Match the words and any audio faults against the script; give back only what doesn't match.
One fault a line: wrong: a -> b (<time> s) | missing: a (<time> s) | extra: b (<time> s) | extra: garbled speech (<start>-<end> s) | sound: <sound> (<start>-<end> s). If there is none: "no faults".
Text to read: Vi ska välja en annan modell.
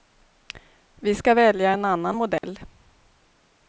sound: dropout (2.4-2.4 s)